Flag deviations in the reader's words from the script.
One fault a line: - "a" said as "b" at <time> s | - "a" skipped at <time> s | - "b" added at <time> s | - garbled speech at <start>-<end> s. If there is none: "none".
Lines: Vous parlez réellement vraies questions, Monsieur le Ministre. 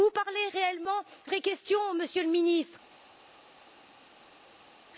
none